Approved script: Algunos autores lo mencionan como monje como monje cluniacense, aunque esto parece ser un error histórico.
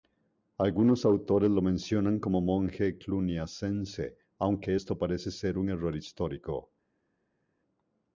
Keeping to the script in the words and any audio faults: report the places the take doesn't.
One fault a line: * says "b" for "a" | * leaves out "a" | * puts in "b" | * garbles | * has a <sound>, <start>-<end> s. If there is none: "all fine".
* leaves out "como monje"